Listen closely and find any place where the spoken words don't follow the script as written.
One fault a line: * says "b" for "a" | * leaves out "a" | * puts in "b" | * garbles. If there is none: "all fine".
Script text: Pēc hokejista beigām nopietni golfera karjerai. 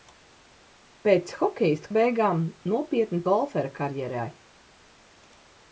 all fine